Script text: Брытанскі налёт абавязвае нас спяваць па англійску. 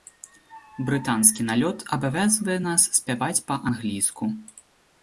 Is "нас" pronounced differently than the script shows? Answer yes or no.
no